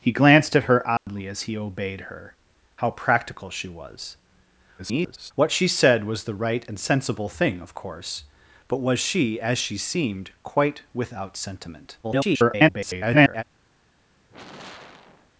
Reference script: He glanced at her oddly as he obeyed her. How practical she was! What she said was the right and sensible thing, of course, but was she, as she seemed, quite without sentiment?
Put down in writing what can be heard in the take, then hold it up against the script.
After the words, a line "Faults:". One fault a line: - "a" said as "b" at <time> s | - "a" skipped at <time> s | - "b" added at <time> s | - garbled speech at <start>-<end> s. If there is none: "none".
He glanced at her oddly as he obeyed her. How practical she was! [garbled] What she said was the right and sensible thing, of course, but was she, as she seemed, quite without sentiment? [garbled]
Faults:
- garbled speech at 4.8-5.3 s
- garbled speech at 12.0-13.4 s